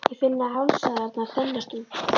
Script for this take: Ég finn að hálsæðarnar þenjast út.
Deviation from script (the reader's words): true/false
false